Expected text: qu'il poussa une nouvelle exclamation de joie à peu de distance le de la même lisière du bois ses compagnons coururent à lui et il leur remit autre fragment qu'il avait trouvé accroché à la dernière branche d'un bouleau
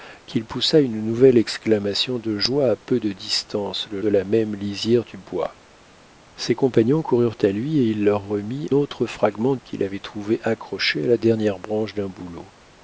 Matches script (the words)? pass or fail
pass